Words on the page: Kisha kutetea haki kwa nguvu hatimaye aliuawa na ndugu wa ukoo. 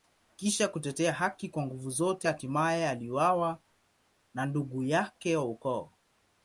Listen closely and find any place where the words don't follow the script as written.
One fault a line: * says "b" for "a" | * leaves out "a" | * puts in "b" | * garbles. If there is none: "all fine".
* puts in "zote"
* puts in "yake"